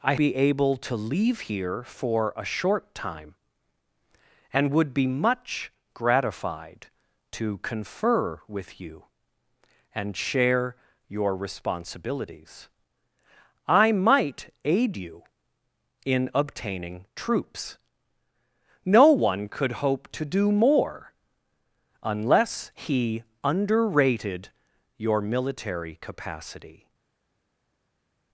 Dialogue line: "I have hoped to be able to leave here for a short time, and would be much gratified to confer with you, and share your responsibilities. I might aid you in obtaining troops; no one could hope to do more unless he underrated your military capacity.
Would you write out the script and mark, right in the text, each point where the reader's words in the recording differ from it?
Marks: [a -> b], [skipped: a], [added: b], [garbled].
"I [skipped: have hoped to] be able to leave here for a short time, and would be much gratified to confer with you, and share your responsibilities. I might aid you in obtaining troops; no one could hope to do more unless he underrated your military capacity.